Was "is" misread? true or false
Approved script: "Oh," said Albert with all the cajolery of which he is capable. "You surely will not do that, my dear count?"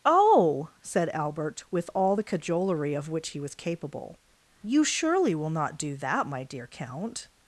true